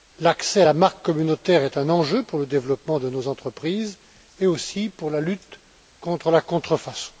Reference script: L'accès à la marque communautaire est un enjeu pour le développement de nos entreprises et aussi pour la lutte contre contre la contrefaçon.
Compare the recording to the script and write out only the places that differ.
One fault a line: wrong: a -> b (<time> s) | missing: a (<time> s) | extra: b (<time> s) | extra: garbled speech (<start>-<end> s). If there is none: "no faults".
missing: contre (6.3 s)